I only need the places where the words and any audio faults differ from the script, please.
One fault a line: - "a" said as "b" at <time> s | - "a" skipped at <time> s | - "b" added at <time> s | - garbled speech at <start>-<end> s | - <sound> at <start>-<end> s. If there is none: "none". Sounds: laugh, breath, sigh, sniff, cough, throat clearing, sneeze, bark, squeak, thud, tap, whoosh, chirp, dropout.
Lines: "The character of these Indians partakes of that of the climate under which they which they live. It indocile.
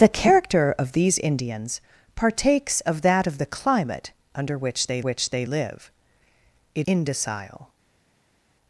none